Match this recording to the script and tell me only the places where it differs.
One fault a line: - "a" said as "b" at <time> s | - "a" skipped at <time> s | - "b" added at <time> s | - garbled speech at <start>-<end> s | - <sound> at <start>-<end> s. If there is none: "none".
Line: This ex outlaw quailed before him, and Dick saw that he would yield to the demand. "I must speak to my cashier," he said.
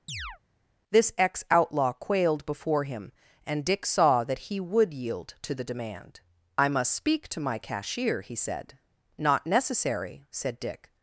- chirp at 0.1-0.4 s
- "Not necessary said Dick" added at 9.2 s